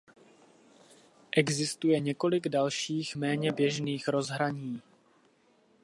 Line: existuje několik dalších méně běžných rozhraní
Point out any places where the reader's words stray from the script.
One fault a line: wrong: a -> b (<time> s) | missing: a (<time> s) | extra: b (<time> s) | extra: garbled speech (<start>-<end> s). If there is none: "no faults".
no faults